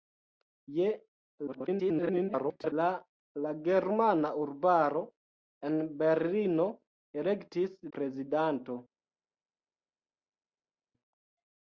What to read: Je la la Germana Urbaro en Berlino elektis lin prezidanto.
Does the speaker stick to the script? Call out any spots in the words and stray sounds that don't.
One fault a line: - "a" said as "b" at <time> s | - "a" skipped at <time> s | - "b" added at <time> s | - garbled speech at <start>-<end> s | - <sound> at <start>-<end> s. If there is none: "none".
- garbled speech at 1.5-2.7 s
- "lin" skipped at 7.7 s